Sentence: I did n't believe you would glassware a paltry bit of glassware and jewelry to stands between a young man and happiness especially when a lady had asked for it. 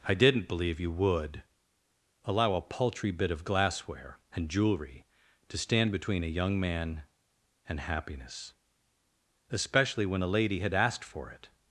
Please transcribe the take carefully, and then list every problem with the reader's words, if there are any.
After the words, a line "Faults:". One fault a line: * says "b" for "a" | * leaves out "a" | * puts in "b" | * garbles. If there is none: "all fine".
I did n't believe you would allow a paltry bit of glassware and jewelry to stand between a young man and happiness especially when a lady had asked for it.
Faults:
* says "allow" for "glassware"
* says "stand" for "stands"